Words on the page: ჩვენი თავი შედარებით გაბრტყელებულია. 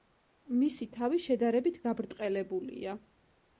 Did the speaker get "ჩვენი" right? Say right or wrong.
wrong